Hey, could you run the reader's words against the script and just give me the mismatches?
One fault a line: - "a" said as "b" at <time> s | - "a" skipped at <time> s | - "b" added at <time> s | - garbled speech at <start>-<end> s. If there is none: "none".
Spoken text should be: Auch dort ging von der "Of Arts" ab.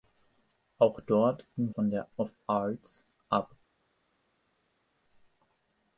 none